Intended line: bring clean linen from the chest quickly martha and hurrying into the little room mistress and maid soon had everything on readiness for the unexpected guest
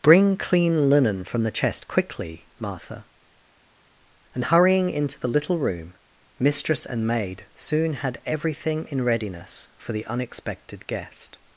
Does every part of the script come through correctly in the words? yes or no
no